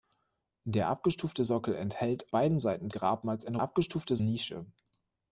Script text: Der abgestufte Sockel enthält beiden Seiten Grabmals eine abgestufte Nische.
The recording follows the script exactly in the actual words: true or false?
true